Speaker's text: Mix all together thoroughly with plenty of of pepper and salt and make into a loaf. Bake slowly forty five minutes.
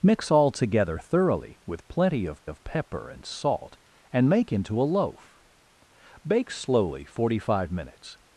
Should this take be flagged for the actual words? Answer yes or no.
no